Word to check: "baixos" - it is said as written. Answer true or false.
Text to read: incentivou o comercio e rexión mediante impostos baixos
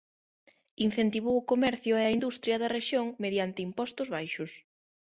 true